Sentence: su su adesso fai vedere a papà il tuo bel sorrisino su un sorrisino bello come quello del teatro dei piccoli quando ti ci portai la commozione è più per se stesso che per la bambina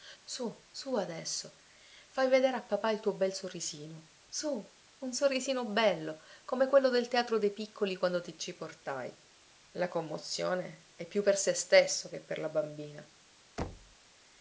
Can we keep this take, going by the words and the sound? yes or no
no